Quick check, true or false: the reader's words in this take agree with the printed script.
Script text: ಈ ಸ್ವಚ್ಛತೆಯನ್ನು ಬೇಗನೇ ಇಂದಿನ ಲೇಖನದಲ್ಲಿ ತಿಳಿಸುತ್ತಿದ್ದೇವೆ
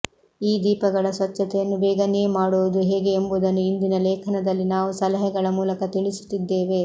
false